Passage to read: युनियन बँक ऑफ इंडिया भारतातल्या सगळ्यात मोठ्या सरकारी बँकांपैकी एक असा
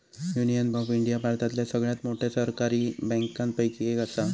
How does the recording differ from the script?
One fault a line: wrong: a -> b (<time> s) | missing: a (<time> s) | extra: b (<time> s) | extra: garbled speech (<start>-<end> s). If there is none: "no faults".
missing: बँक (0.7 s)